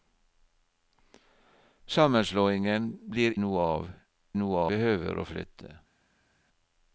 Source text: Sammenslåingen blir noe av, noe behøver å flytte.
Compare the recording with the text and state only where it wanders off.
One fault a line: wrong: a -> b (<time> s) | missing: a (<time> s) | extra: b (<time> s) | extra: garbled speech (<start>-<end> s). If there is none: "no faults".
no faults